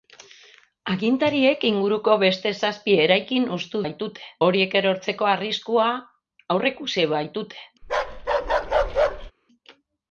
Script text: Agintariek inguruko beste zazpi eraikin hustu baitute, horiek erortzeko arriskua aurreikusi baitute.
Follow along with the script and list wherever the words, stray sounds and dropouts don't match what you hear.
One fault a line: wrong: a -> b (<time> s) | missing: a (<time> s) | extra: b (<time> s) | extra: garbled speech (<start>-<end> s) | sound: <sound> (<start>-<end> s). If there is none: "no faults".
sound: bark (7.8-9.3 s)